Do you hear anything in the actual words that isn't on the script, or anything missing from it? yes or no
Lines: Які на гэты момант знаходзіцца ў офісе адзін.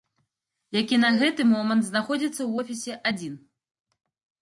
no